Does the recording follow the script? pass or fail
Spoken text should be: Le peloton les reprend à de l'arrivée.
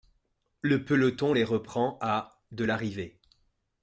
pass